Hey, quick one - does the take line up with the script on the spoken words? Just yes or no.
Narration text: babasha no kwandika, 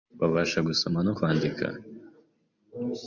no